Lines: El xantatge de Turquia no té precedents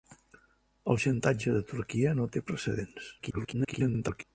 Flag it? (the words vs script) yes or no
yes